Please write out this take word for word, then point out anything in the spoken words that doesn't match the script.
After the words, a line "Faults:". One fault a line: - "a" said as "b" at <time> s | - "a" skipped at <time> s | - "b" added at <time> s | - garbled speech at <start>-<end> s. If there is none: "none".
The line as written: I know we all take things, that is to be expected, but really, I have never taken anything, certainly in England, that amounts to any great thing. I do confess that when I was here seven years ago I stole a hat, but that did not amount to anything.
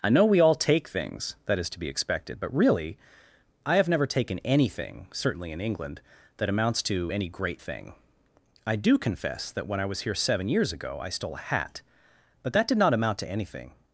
I know we all take things, that is to be expected, but really, I have never taken anything, certainly in England, that amounts to any great thing. I do confess that when I was here seven years ago I stole a hat, but that did not amount to anything.
Faults:
none